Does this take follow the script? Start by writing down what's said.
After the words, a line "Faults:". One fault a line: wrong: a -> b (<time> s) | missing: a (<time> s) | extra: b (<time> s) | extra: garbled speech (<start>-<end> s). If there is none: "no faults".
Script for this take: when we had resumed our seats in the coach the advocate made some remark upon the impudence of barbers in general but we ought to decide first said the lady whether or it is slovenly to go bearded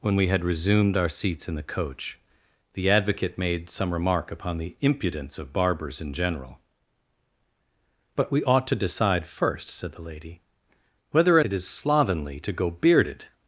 when we had resumed our seats in the coach the advocate made some remark upon the impudence of barbers in general but we ought to decide first said the lady whether or it is slovenly to go bearded
Faults:
no faults